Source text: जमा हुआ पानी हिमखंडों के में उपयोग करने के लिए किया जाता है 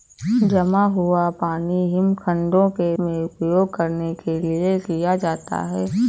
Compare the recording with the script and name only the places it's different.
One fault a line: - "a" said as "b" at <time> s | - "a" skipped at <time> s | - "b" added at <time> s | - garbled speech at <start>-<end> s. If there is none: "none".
none